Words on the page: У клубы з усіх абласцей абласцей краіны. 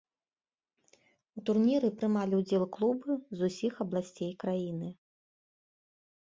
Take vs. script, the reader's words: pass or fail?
fail